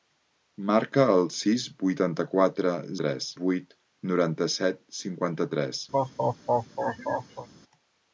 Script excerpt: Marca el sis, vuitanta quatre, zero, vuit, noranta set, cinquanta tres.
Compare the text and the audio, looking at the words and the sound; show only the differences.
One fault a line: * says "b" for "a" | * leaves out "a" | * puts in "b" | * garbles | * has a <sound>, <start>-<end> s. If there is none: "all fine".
* says "tres" for "zero"
* has a laugh, 5.9-7.5 s